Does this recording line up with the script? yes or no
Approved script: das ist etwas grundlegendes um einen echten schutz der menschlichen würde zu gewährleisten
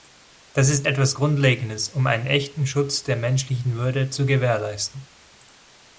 yes